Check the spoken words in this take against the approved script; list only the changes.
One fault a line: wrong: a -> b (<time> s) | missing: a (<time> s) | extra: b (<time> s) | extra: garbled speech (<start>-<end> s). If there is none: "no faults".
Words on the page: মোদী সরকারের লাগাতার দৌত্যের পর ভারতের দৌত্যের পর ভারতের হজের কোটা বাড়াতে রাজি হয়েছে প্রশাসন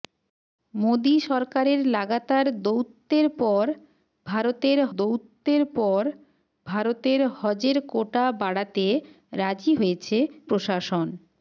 no faults